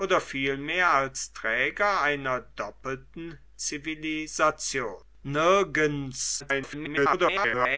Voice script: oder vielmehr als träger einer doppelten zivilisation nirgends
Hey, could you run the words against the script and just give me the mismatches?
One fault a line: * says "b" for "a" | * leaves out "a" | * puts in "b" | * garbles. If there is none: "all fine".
* garbles